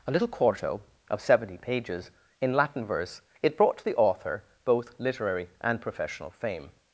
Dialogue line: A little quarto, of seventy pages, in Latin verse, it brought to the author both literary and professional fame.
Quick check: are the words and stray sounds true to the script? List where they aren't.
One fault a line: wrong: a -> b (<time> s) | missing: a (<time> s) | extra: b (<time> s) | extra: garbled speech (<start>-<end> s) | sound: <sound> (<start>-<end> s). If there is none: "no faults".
no faults